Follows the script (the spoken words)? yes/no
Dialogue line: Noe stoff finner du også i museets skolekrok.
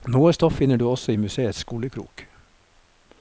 yes